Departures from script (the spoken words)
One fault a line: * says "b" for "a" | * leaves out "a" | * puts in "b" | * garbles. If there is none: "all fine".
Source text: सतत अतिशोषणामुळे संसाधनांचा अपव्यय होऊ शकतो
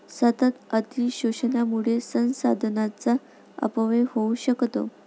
all fine